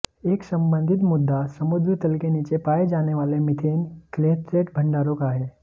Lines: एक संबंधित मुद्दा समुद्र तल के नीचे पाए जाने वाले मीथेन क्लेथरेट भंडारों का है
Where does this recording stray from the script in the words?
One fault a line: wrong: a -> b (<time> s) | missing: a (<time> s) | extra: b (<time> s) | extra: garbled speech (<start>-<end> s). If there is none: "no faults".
no faults